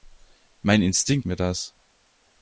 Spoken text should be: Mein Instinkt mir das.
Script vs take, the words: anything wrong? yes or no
no